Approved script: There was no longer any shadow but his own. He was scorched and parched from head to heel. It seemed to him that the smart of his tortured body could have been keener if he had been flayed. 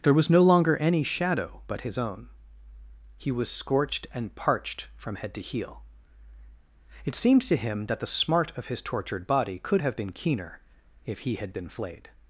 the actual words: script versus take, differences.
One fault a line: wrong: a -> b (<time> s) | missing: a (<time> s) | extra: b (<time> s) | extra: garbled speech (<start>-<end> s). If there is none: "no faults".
no faults